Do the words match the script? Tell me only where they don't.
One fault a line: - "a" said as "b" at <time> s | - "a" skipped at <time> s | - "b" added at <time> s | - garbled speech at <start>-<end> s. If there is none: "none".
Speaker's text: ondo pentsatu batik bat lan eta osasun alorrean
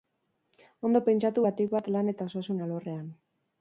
none